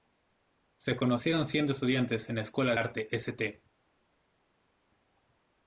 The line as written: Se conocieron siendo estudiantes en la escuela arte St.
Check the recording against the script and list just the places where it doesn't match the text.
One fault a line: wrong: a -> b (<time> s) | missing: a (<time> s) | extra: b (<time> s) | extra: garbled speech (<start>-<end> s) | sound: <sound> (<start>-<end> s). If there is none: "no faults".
no faults